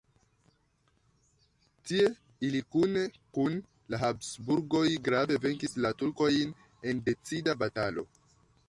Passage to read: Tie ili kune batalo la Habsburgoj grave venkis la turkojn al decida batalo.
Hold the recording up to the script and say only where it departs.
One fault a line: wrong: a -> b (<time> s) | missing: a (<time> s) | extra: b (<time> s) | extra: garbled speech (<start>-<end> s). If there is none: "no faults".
wrong: batalo -> kun (3.4 s)
wrong: al -> en (6.9 s)